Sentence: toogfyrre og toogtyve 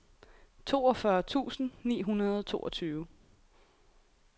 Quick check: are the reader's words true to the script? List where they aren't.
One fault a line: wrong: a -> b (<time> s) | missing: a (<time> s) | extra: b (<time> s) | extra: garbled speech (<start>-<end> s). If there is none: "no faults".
extra: tusind ni hundrede (1.2 s)